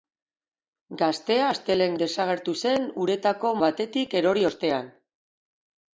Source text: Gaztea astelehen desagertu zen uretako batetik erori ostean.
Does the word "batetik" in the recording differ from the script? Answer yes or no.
no